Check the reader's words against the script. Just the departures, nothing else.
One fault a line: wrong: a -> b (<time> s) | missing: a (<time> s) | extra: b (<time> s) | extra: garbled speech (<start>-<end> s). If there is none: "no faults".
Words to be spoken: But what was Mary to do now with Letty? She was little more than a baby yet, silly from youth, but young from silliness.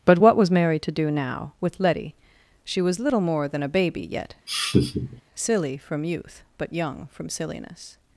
no faults